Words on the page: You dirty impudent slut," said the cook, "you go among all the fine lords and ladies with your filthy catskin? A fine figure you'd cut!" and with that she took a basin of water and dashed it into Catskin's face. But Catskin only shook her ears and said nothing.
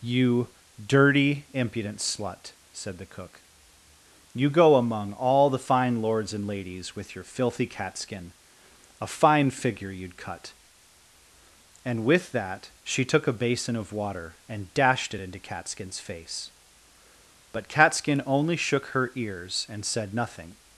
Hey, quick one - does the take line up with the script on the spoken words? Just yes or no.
yes